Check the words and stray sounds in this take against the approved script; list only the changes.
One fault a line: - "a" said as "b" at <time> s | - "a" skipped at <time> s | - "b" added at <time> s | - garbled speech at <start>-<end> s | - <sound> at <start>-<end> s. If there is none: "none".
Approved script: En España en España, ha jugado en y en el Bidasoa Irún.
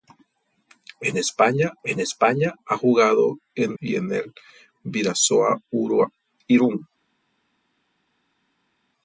none